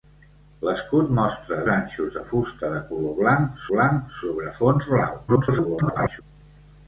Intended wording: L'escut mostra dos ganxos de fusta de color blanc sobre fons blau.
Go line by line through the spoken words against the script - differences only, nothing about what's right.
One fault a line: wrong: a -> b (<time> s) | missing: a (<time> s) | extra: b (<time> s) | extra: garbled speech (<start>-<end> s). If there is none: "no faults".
missing: dos (1.6 s)
extra: blanc (3.7 s)
extra: garbled speech (5.3-6.2 s)